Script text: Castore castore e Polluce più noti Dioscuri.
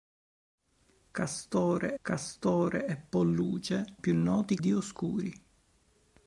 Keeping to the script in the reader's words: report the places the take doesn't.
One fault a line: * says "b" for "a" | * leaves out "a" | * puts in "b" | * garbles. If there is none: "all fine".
all fine